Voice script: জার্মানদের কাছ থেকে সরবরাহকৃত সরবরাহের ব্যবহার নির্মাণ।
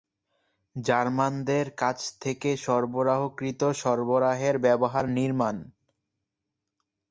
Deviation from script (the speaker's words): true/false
false